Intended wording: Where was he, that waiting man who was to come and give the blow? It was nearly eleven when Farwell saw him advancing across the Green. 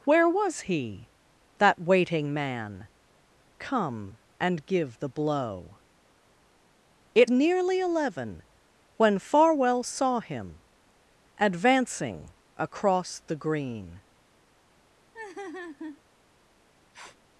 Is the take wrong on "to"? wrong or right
wrong